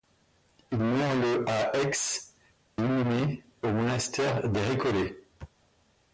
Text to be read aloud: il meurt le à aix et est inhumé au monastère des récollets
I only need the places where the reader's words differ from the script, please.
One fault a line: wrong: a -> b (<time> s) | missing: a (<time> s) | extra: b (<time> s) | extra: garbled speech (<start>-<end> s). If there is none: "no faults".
missing: et est (1.9 s)